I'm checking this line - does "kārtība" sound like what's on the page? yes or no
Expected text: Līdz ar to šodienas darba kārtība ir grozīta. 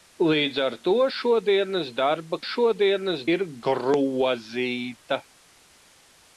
no